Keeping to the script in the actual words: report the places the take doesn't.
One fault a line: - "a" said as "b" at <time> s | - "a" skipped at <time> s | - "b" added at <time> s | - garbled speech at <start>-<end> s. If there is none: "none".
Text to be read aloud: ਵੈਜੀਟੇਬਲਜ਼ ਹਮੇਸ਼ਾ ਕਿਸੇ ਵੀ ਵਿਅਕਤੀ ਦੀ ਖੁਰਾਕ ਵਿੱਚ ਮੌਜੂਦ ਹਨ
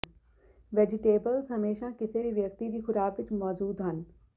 none